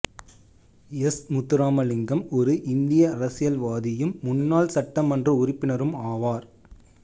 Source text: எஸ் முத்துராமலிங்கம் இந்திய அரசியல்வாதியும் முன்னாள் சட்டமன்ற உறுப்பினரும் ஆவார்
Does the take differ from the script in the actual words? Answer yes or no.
yes